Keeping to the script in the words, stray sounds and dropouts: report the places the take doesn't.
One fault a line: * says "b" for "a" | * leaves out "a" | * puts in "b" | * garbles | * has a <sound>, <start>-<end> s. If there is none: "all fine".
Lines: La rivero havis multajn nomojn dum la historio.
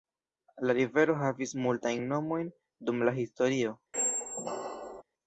* has a squeak, 3.9-5.0 s